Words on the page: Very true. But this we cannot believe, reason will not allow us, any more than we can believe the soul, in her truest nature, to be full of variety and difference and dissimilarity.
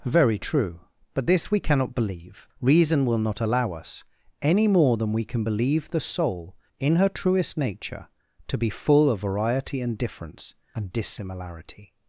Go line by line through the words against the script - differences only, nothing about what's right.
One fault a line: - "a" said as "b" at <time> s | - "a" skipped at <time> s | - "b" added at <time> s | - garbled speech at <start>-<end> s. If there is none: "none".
none